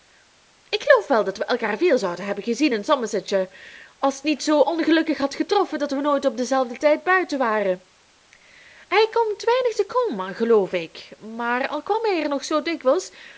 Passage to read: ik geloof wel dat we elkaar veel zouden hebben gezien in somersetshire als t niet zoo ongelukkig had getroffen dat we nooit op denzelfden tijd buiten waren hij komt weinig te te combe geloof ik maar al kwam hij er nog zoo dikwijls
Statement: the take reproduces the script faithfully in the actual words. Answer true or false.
false